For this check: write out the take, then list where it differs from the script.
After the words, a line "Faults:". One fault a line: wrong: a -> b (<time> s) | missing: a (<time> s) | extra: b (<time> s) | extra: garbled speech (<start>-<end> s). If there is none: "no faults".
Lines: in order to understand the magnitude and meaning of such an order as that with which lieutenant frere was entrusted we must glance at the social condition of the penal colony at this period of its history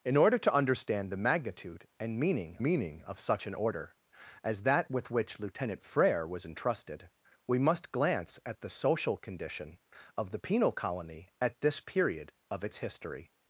in order to understand the magnitude and meaning meaning of such an order as that with which lieutenant frere was entrusted we must glance at the social condition of the penal colony at this period of its history
Faults:
extra: meaning (2.6 s)